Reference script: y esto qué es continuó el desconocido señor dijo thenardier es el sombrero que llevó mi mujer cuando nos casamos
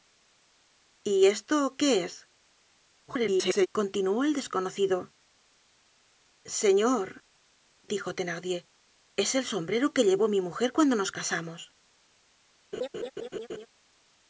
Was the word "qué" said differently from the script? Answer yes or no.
no